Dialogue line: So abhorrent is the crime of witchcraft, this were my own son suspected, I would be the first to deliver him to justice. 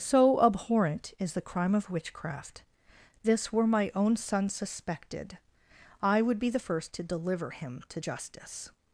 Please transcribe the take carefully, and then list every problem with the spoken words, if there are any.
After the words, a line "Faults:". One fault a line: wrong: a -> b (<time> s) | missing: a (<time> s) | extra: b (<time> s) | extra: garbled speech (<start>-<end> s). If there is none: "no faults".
So abhorrent is the crime of witchcraft, this were my own son suspected, I would be the first to deliver him to justice.
Faults:
no faults